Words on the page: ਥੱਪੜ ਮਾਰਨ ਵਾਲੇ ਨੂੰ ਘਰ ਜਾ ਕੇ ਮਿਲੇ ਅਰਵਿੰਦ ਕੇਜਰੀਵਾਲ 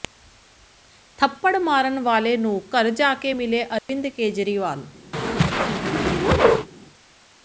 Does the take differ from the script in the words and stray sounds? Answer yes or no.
yes